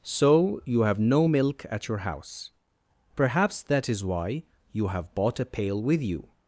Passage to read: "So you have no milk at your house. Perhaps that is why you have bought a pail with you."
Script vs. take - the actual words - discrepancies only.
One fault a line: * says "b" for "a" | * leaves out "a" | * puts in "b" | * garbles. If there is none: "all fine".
all fine